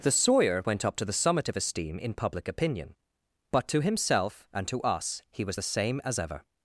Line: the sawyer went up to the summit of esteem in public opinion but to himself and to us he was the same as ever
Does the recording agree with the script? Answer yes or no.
yes